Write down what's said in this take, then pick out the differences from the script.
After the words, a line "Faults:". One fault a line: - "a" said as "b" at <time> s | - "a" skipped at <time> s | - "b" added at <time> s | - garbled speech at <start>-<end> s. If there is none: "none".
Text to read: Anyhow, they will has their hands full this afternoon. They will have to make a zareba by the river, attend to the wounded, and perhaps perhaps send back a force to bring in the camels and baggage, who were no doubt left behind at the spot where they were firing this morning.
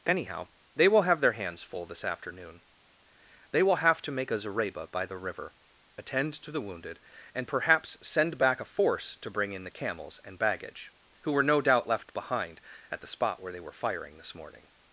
Anyhow, they will have their hands full this afternoon. They will have to make a zareba by the river, attend to the wounded, and perhaps send back a force to bring in the camels and baggage, who were no doubt left behind at the spot where they were firing this morning.
Faults:
- "has" said as "have" at 1.0 s
- "perhaps" skipped at 8.0 s